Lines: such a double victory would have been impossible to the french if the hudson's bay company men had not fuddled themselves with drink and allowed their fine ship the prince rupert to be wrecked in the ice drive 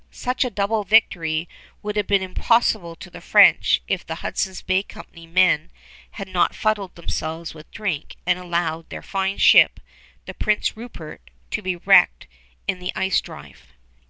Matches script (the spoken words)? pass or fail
pass